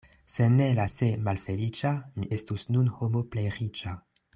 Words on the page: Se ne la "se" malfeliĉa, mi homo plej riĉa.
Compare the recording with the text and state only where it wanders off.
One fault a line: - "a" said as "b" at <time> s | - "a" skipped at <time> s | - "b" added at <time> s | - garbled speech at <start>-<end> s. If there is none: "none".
- "estus nun" added at 2.4 s